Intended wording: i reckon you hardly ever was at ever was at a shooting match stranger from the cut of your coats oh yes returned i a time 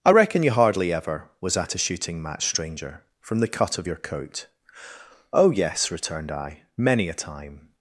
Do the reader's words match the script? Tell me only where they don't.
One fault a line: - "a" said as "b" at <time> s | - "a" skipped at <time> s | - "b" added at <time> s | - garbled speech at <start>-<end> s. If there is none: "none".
- "ever was at" skipped at 1.7 s
- "coats" said as "coat" at 4.0 s
- "many" added at 6.8 s